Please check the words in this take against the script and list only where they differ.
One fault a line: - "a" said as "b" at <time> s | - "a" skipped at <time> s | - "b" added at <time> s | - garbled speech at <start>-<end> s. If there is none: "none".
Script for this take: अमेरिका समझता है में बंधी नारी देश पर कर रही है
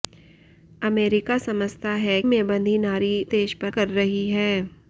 none